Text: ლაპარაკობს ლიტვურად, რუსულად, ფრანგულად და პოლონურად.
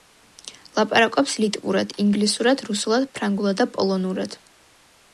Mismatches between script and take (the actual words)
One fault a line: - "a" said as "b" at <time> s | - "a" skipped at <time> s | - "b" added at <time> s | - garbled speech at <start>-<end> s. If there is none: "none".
- "ინგლისურად" added at 2.0 s